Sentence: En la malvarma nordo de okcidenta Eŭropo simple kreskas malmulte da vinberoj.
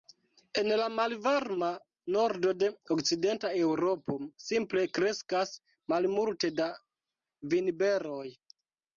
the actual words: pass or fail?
pass